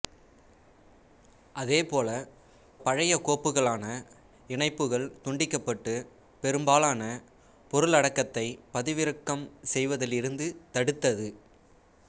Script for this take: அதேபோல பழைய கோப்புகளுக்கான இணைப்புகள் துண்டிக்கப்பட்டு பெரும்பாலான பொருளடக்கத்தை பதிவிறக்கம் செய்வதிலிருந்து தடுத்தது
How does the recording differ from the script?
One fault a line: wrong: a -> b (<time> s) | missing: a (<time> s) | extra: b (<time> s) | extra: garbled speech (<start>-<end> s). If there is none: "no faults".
no faults